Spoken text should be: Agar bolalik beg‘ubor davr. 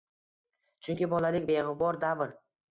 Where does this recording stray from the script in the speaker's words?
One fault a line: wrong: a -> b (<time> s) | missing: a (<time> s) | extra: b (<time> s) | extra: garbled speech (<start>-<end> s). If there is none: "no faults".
wrong: Agar -> Chunki (0.9 s)